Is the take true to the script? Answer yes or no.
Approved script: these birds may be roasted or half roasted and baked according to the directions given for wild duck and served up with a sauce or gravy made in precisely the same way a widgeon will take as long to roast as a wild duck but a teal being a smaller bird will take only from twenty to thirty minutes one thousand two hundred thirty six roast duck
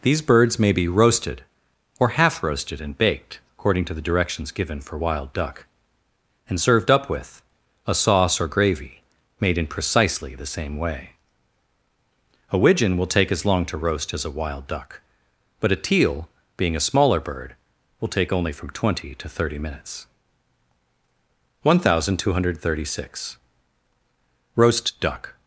yes